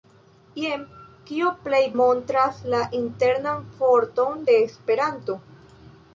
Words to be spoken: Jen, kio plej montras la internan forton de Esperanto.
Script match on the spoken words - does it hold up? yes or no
yes